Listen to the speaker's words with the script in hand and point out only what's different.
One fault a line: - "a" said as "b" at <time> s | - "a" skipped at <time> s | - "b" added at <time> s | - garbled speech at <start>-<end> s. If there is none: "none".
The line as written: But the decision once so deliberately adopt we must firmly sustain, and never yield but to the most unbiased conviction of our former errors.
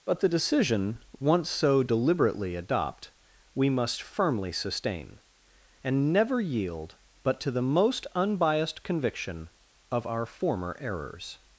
none